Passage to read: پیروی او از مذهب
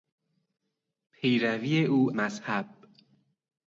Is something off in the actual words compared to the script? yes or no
yes